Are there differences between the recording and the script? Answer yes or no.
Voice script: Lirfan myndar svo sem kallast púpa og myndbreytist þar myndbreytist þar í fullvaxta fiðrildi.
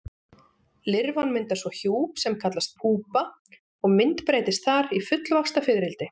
yes